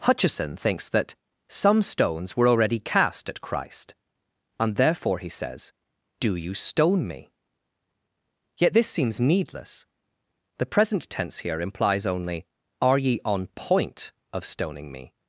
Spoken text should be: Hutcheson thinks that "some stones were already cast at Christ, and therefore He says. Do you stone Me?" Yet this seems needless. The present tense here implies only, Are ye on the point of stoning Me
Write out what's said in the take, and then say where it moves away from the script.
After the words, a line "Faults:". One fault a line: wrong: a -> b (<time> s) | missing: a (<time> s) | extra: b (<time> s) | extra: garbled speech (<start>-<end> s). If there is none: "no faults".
Hutcheson thinks that "some stones were already cast at Christ, and therefore He says. Do you stone Me?" Yet this seems needless. The present tense here implies only, Are ye on point of stoning Me
Faults:
missing: the (13.5 s)